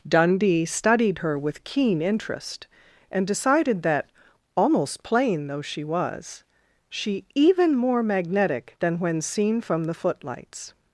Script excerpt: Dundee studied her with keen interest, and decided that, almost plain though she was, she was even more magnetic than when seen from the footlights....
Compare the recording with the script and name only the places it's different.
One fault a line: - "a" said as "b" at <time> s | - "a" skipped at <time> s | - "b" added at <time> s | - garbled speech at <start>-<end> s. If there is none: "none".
- "was" skipped at 7.3 s